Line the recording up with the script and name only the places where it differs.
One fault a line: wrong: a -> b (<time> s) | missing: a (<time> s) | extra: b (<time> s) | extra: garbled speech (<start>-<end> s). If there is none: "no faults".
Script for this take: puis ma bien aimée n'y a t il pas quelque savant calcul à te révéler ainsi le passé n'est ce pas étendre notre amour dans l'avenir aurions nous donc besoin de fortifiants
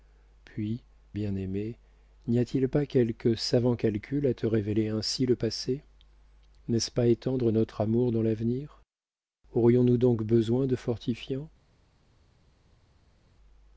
missing: ma (0.8 s)